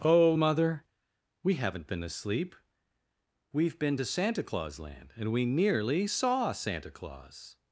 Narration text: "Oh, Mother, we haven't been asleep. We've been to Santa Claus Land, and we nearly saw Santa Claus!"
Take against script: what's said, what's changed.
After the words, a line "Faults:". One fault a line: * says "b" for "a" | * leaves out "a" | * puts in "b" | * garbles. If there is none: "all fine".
"Oh, Mother, we haven't been asleep. We've been to Santa Claus Land, and we nearly saw Santa Claus!"
Faults:
all fine